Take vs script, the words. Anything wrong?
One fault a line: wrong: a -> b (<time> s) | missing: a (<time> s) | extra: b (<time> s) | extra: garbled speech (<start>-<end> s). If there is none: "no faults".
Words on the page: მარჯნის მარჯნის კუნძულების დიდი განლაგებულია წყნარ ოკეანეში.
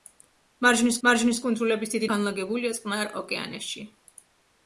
no faults